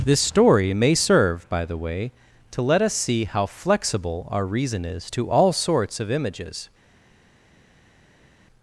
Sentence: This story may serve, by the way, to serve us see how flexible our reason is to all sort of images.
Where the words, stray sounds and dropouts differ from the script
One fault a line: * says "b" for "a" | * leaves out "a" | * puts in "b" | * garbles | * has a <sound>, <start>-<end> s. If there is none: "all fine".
* says "let" for "serve"
* says "sorts" for "sort"